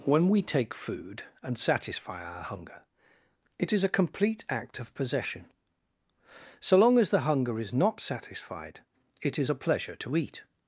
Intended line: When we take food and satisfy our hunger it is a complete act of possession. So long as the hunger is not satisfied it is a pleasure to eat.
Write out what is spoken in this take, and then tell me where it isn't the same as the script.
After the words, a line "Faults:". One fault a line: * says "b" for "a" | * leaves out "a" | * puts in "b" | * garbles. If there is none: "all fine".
When we take food and satisfy our hunger it is a complete act of possession. So long as the hunger is not satisfied it is a pleasure to eat.
Faults:
all fine